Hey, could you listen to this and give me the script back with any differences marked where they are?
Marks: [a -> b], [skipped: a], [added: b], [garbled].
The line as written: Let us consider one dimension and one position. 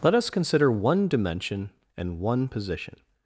Let us consider one dimension and one position.